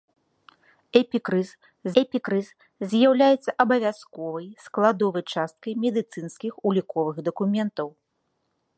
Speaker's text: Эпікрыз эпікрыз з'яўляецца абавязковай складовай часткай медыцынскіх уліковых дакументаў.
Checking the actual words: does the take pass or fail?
pass